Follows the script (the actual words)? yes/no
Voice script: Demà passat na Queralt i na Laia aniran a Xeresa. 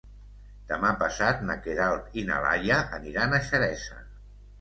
yes